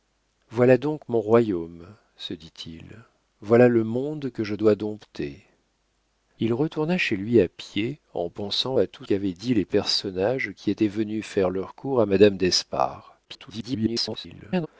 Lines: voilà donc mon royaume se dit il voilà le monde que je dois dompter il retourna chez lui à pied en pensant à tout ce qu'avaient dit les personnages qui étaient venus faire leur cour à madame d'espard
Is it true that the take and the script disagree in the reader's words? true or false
true